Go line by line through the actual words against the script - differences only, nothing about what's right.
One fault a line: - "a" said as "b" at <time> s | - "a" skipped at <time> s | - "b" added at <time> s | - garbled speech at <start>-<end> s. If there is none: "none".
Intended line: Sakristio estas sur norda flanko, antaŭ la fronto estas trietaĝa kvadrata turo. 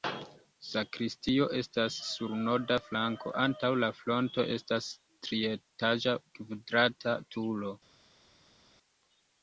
none